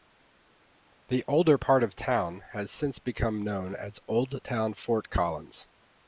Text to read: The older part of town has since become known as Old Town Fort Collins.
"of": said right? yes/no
yes